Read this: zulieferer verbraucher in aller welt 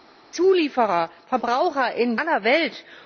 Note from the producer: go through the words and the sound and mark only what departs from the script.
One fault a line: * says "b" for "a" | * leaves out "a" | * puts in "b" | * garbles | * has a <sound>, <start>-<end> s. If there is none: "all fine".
all fine